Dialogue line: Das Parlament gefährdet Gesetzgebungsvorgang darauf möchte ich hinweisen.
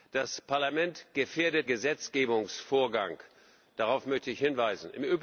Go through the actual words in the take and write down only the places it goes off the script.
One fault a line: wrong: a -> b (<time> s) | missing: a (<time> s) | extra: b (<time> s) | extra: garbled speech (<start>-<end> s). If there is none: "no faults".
no faults